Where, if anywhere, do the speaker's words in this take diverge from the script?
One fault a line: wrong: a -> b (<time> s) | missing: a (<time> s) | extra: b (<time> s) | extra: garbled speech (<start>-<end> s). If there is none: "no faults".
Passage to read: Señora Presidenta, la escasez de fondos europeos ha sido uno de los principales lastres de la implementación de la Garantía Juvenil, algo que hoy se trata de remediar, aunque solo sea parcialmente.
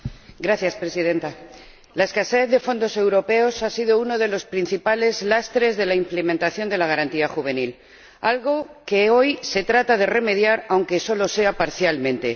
no faults